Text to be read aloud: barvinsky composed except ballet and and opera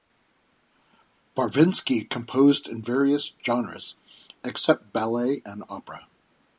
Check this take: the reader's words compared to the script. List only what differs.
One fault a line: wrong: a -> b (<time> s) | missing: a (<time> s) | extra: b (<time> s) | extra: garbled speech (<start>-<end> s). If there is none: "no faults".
extra: in various genres (2.7 s)
missing: and (5.6 s)